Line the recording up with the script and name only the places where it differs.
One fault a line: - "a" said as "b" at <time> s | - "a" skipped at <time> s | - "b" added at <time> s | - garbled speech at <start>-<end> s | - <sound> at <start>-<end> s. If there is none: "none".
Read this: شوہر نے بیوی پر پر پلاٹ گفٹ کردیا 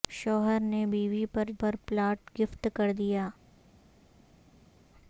none